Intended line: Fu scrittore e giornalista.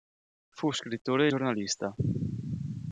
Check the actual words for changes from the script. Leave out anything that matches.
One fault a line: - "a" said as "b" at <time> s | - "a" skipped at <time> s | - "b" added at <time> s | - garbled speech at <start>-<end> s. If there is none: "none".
none